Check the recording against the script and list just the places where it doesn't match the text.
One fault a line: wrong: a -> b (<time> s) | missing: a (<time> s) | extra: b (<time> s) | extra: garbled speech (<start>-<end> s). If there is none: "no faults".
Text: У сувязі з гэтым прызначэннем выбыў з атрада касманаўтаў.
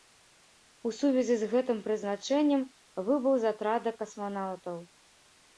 no faults